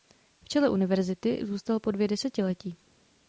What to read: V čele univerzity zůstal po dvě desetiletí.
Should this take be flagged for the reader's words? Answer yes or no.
no